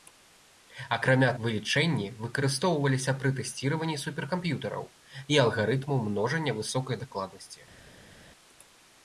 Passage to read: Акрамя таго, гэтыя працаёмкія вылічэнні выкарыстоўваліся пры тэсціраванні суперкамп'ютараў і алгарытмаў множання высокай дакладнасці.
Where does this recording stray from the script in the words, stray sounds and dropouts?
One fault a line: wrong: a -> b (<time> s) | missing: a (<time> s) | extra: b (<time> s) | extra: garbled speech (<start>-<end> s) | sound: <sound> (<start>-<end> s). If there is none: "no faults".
missing: таго гэтыя працаёмкія (1.3 s)